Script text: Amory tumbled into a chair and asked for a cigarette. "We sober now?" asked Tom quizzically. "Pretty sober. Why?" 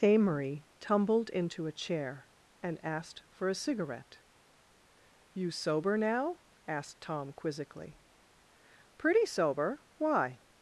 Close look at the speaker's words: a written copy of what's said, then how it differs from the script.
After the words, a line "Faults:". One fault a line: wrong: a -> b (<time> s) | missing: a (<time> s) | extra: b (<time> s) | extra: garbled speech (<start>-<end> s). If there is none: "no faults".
Amory tumbled into a chair and asked for a cigarette. "You sober now?" asked Tom quizzically. "Pretty sober. Why?"
Faults:
wrong: We -> You (5.3 s)